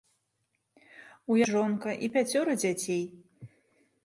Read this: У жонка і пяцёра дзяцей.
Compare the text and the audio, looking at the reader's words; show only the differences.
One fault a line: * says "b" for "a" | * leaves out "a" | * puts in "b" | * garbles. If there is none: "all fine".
all fine